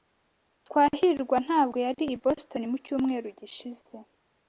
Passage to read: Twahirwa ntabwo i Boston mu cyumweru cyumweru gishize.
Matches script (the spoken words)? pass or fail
fail